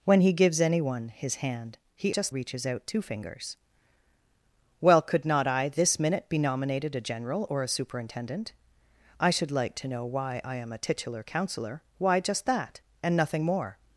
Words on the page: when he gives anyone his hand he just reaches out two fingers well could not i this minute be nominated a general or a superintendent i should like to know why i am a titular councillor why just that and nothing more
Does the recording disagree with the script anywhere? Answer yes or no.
no